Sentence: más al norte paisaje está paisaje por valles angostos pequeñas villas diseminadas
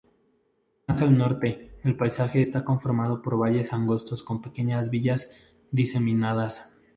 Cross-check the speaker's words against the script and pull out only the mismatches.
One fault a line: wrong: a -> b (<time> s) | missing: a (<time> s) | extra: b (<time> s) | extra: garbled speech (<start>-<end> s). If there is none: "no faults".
extra: el (1.8 s)
wrong: paisaje -> conformado (2.6 s)
extra: con (4.2 s)